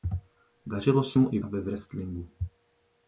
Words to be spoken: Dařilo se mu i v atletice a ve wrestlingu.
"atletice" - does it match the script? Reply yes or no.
no